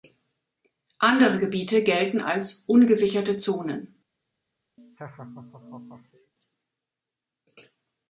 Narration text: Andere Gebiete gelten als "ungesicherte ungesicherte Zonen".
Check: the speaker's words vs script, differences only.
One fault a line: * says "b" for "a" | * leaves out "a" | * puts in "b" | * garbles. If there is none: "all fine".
* leaves out "ungesicherte"